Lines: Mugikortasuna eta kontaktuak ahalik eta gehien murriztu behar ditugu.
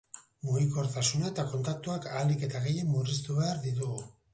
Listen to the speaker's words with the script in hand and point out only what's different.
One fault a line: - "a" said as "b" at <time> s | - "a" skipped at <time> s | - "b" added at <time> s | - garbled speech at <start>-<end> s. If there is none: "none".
none